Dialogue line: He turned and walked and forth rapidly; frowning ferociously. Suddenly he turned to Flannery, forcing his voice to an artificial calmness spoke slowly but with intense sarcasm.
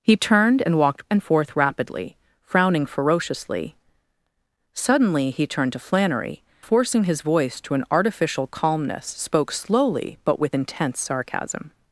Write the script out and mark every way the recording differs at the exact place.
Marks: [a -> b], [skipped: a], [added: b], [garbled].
He turned and walked and forth rapidly; frowning ferociously. Suddenly he turned to Flannery, forcing his voice to an artificial calmness spoke slowly but with intense sarcasm.